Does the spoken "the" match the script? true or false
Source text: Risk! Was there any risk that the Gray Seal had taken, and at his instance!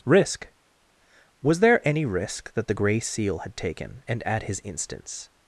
true